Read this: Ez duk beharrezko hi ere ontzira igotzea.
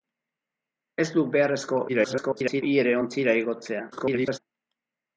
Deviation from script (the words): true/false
true